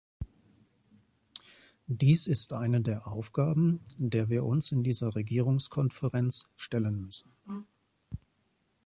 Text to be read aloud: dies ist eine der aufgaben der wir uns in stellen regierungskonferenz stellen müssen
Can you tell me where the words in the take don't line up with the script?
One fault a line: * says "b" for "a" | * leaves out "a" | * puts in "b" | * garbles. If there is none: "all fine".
* says "dieser" for "stellen"